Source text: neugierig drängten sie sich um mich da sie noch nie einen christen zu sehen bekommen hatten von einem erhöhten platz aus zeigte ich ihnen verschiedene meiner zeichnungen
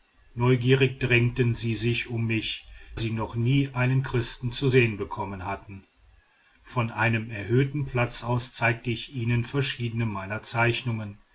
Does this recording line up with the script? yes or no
no